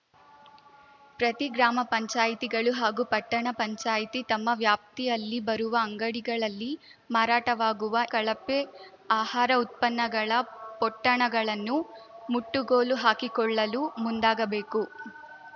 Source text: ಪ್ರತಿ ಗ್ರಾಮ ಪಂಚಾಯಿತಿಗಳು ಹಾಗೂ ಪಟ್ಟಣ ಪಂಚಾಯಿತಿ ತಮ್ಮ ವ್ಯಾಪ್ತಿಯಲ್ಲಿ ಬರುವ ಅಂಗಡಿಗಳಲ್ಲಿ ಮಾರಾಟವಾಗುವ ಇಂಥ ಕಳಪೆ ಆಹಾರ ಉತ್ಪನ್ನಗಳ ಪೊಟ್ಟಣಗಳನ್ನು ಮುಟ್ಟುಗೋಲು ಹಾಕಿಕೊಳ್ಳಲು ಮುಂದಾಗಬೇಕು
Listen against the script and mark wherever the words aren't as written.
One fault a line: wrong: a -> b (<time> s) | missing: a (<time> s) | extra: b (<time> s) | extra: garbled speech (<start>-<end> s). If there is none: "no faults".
missing: ಇಂಥ (8.0 s)